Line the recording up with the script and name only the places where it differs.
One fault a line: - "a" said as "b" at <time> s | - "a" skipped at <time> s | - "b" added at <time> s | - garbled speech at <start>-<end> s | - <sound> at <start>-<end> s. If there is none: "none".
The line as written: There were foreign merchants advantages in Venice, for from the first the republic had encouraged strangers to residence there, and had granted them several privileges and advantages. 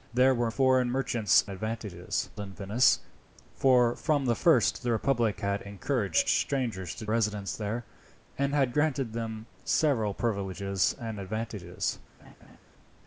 - laugh at 12.2-12.6 s